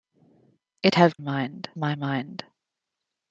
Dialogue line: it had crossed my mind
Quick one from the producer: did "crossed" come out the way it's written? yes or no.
no